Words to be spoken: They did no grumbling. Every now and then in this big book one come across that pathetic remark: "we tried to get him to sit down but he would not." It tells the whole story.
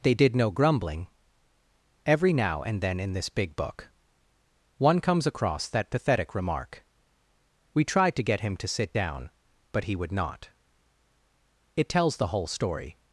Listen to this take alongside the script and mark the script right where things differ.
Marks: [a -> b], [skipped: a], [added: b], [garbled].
They did no grumbling. Every now and then in this big book one [come -> comes] across that pathetic remark: "we tried to get him to sit down but he would not." It tells the whole story.